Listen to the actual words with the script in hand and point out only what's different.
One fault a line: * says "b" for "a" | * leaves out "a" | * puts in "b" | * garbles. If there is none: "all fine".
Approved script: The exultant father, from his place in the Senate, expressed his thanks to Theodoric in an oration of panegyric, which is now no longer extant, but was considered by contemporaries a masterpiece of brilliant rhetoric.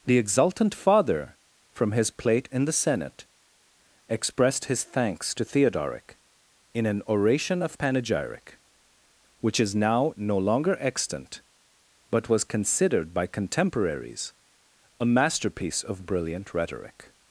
* says "plate" for "place"